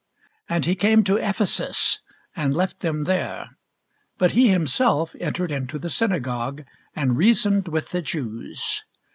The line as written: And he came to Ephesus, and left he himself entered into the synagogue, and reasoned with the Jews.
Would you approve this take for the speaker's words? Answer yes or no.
no